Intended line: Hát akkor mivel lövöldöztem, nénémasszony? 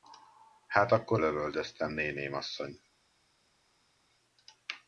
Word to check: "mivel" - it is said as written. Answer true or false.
false